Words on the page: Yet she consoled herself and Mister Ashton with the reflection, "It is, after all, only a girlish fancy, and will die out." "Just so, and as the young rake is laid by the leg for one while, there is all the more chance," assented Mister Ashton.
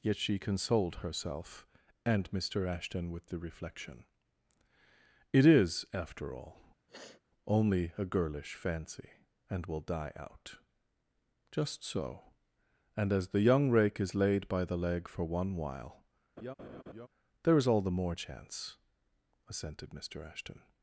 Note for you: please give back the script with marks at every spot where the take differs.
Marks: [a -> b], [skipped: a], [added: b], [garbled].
Yet she consoled herself and Mister Ashton with the reflection, "It is, after all, only a girlish fancy, and will die out." "Just so, and as the young rake is laid by the leg for one while, there is all the more chance," assented Mister Ashton.